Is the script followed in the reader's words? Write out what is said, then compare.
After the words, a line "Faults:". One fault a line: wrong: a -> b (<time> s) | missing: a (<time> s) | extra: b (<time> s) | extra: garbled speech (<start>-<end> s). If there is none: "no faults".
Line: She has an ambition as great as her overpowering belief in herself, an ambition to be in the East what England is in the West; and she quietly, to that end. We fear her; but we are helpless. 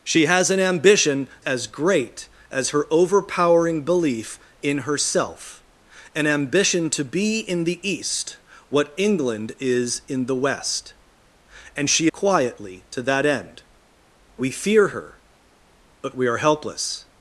She has an ambition as great as her overpowering belief in herself, an ambition to be in the East what England is in the West; and she quietly, to that end. We fear her; but we are helpless.
Faults:
no faults